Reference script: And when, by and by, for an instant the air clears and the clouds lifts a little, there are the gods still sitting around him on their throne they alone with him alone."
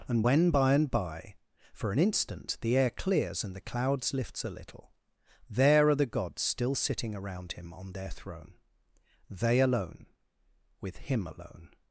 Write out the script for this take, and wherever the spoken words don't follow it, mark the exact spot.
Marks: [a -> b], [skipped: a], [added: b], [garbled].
And when, by and by, for an instant the air clears and the clouds lifts a little, there are the gods still sitting around him on their throne they alone with him alone."